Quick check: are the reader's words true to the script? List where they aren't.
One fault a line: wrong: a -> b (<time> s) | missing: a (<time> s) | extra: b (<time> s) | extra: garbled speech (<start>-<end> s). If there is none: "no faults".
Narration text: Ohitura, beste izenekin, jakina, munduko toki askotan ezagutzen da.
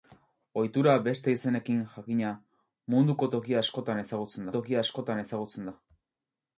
extra: toki askotan ezagutzen (4.6 s)